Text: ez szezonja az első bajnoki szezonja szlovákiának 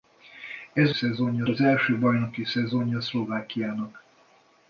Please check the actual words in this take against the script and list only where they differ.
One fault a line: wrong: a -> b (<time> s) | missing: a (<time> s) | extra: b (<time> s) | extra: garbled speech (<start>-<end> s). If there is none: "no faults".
no faults